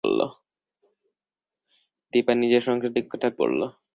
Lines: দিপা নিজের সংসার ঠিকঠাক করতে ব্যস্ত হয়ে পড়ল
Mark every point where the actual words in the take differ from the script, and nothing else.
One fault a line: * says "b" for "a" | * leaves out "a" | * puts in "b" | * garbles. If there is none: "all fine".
* leaves out "করতে ব্যস্ত হয়ে"